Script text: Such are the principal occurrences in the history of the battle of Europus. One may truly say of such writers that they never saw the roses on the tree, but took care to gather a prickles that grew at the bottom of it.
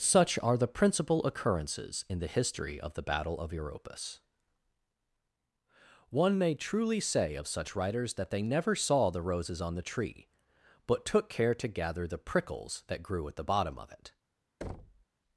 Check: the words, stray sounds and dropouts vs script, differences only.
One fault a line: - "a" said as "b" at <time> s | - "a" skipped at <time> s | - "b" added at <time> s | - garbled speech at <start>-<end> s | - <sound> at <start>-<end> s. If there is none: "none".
- "a" said as "the" at 12.1 s
- thud at 14.6-15.1 s